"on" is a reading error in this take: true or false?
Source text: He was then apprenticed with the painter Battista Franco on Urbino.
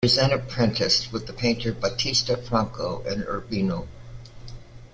true